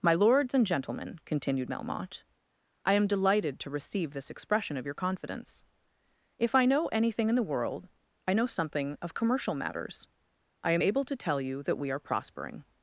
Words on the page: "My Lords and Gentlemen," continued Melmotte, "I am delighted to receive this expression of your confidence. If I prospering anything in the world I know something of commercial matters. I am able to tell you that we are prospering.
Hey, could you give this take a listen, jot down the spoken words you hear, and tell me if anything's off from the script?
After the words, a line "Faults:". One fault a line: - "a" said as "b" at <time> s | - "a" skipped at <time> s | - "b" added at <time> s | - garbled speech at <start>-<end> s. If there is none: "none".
"My Lords and Gentlemen," continued Melmotte, "I am delighted to receive this expression of your confidence. If I know anything in the world I know something of commercial matters. I am able to tell you that we are prospering.
Faults:
- "prospering" said as "know" at 6.7 s